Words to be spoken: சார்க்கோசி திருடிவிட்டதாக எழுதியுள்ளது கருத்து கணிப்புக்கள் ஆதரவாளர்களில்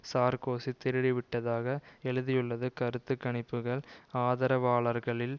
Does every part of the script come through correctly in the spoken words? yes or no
yes